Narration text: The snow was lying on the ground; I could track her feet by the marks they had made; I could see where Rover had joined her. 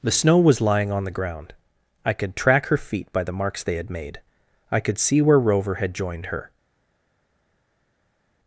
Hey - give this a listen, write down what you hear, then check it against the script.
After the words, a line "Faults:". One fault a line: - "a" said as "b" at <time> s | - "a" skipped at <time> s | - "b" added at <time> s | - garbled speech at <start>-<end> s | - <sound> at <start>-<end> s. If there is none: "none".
The snow was lying on the ground; I could track her feet by the marks they had made; I could see where Rover had joined her.
Faults:
none